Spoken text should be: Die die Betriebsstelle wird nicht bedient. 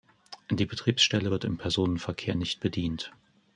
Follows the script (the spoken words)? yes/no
no